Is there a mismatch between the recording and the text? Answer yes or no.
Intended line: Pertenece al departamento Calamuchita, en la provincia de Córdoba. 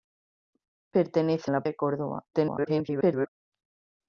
yes